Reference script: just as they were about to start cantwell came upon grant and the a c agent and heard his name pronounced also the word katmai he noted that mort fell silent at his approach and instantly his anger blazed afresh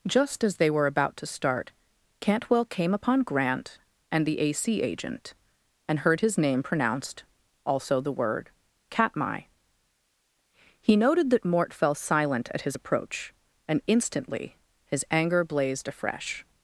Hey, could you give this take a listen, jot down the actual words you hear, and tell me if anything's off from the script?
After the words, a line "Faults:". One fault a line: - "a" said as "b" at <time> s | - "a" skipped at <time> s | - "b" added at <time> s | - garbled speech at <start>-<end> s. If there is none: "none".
just as they were about to start cantwell came upon grant and the a c agent and heard his name pronounced also the word katmai he noted that mort fell silent at his approach and instantly his anger blazed afresh
Faults:
none